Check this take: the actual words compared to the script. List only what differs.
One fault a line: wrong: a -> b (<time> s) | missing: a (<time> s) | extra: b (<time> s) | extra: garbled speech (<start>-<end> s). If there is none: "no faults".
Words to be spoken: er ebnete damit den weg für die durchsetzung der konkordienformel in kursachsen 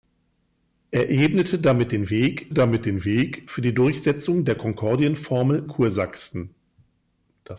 extra: damit den weg (2.5 s)
missing: in (5.7 s)